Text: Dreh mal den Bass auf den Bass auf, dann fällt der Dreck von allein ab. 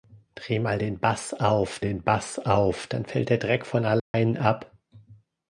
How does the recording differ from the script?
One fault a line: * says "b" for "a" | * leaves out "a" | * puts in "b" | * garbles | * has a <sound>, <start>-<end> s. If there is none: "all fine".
* has a dropout, 4.0-4.1 s